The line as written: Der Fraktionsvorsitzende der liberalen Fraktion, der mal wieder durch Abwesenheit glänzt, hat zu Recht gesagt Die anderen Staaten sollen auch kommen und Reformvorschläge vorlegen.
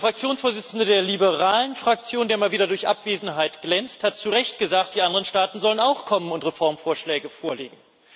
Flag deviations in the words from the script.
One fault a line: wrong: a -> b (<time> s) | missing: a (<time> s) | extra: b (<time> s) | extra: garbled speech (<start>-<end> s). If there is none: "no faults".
no faults